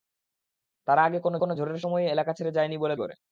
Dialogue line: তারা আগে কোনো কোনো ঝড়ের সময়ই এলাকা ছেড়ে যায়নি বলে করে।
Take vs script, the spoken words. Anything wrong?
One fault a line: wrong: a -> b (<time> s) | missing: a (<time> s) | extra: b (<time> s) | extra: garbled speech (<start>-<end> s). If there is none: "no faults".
no faults